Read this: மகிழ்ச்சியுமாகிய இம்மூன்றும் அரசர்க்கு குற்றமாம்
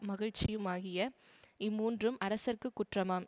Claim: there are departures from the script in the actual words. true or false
false